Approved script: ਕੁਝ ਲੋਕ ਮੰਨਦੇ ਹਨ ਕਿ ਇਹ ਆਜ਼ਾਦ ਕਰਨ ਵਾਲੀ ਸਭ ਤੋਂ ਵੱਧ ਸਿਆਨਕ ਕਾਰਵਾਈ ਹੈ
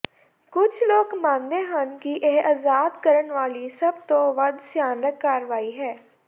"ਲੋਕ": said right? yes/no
yes